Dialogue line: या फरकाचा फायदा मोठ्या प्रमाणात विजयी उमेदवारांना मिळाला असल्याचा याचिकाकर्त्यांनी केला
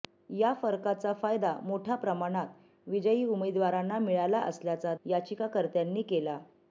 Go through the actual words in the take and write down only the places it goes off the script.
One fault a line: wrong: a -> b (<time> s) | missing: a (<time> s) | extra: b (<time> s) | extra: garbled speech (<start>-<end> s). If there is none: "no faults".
no faults